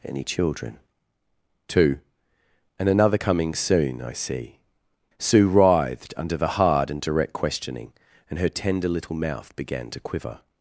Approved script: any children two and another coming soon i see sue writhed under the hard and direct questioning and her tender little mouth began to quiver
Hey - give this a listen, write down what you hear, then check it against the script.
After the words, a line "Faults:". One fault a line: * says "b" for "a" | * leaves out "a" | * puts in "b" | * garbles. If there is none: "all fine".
any children two and another coming soon i see sue writhed under the hard and direct questioning and her tender little mouth began to quiver
Faults:
all fine